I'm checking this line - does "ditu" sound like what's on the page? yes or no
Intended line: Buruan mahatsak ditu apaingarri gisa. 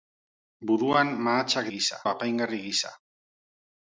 no